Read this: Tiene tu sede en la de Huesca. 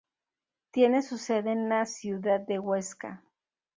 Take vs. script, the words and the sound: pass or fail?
fail